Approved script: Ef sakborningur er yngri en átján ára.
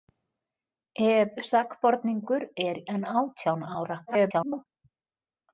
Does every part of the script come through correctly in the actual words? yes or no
no